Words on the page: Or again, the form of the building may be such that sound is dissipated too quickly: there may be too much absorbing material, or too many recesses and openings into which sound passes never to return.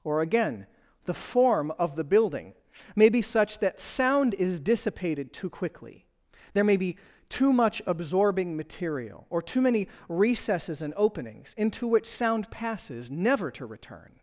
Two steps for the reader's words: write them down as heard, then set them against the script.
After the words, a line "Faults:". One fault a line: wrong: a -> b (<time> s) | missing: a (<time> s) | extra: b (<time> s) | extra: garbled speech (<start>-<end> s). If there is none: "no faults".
Or again, the form of the building may be such that sound is dissipated too quickly: there may be too much absorbing material, or too many recesses and openings into which sound passes never to return.
Faults:
no faults